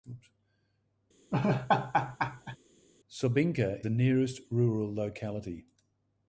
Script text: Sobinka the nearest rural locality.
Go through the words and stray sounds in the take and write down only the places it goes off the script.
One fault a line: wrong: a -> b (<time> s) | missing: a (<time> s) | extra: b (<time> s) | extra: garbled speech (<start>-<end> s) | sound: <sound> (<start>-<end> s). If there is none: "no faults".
sound: laugh (1.3-2.6 s)